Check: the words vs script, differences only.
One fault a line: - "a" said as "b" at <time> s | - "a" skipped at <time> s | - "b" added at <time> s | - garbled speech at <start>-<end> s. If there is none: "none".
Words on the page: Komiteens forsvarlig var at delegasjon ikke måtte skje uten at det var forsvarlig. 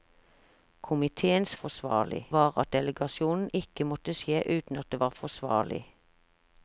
none